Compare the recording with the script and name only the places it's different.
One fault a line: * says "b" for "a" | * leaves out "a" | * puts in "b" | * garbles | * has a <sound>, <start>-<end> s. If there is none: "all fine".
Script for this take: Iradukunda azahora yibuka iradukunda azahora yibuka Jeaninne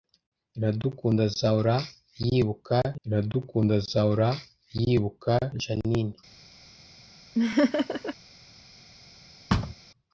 * has a laugh, 7.3-8.1 s
* has a thud, 9.5-9.7 s